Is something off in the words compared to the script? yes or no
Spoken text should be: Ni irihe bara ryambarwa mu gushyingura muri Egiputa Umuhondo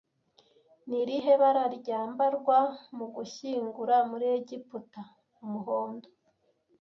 no